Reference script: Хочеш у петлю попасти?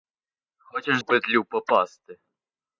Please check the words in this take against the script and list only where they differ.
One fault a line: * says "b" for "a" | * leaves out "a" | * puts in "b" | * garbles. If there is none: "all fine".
all fine